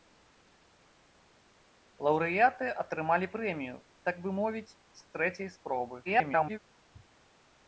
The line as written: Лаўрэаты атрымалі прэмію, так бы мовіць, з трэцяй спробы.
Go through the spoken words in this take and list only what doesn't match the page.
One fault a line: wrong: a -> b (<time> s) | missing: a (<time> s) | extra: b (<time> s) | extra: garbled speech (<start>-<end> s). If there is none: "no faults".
extra: garbled speech (6.0-6.6 s)